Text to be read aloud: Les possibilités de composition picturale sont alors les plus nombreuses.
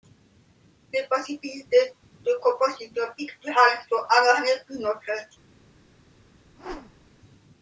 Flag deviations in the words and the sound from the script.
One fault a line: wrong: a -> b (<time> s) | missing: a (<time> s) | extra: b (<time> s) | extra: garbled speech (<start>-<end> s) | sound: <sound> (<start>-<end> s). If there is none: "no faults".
sound: whoosh (6.6-7.1 s)